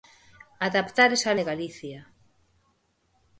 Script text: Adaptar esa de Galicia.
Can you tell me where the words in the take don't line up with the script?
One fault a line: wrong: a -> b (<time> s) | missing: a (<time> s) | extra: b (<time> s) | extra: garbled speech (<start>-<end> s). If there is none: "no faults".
no faults